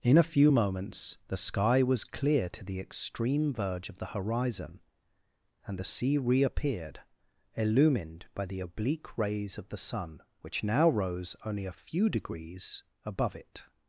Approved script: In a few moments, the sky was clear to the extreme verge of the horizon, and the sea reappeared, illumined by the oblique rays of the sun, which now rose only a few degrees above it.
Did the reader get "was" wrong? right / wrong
right